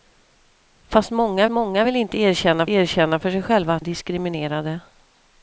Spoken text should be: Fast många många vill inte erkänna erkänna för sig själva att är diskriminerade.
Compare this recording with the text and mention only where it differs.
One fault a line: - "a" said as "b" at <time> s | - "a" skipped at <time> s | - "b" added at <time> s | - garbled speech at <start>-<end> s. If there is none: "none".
none